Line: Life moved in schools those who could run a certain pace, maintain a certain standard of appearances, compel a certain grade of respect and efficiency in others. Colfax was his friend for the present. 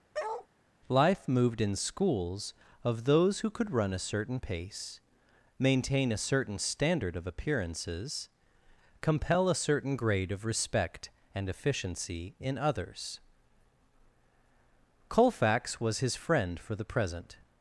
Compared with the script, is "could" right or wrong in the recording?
right